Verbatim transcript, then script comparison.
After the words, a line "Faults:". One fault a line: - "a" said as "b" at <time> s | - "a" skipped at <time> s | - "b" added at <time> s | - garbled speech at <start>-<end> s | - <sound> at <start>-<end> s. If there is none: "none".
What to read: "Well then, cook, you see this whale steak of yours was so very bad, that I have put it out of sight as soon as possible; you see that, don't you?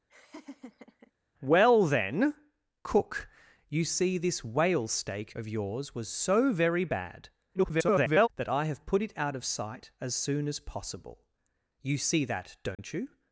"Well then, cook, you see this whale steak of yours was so very bad, [garbled] that I have put it out of sight as soon as possible; you see that, don't you?
Faults:
- laugh at 0.1-1.1 s
- garbled speech at 7.5-8.3 s
- dropout at 12.7-12.8 s